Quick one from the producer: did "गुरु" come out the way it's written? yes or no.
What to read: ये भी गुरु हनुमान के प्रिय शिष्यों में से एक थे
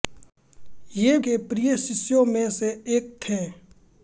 no